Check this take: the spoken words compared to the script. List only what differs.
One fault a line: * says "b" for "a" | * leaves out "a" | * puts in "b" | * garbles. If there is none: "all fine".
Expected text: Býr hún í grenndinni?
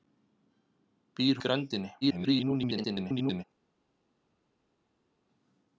* leaves out "hún"
* garbles